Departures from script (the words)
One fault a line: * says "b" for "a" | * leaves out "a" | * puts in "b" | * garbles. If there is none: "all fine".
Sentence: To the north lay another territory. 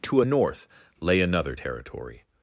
* says "a" for "the"